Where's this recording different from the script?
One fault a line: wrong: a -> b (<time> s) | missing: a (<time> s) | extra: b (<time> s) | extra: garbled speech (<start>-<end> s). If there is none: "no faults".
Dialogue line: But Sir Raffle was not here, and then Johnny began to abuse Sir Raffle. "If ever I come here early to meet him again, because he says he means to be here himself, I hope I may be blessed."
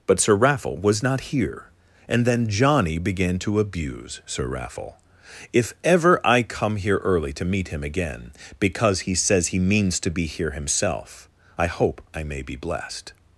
no faults